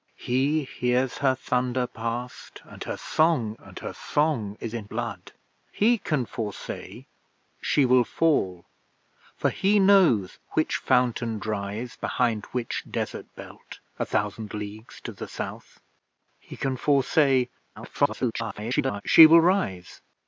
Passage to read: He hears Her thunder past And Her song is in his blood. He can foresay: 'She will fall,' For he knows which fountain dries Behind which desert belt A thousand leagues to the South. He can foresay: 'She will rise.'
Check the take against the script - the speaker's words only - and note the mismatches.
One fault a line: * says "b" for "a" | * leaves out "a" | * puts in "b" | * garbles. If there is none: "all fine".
* puts in "And Her song"
* leaves out "his"
* garbles